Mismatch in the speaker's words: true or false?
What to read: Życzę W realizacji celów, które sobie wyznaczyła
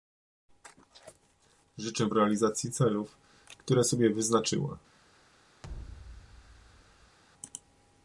false